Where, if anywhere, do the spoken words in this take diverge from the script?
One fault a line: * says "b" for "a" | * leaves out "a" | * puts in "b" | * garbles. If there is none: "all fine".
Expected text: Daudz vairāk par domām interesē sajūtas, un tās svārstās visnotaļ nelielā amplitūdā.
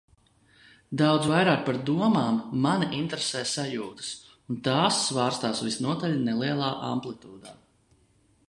* puts in "mani"